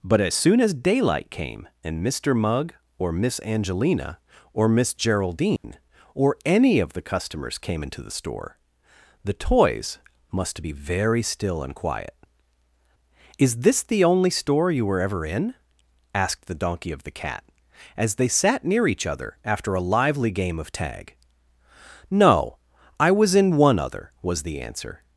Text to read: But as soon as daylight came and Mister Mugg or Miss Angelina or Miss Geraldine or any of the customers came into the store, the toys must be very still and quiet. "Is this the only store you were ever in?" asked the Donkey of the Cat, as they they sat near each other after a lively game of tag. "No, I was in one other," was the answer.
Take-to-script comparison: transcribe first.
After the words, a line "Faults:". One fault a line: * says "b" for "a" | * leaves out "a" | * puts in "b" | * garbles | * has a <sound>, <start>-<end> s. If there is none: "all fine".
But as soon as daylight came and Mister Mugg or Miss Angelina or Miss Geraldine or any of the customers came into the store, the toys must be very still and quiet. "Is this the only store you were ever in?" asked the Donkey of the Cat, as they sat near each other after a lively game of tag. "No, I was in one other," was the answer.
Faults:
* has a dropout, 5.6-5.6 s
* leaves out "they"